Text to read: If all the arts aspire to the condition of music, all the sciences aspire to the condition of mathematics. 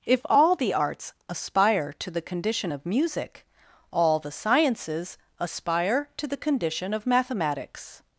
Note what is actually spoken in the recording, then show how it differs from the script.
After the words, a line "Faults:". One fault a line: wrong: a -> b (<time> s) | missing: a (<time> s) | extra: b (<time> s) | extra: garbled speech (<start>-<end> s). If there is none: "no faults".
If all the arts aspire to the condition of music, all the sciences aspire to the condition of mathematics.
Faults:
no faults